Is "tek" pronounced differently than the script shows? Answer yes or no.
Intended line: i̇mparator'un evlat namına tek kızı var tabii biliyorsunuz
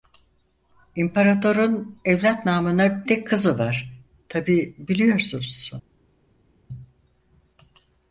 no